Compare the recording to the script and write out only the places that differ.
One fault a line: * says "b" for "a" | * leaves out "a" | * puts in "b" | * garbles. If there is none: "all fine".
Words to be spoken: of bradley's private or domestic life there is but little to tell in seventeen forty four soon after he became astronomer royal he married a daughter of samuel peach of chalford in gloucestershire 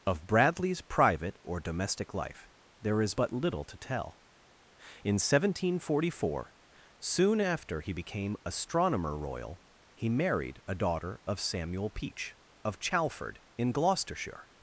all fine